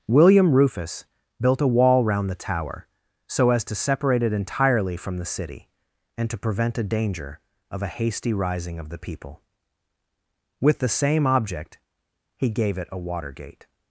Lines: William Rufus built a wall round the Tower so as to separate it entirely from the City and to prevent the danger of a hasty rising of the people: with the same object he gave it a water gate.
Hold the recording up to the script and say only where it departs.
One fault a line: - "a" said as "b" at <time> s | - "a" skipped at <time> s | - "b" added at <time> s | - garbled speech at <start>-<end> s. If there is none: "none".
- "the" said as "a" at 6.8 s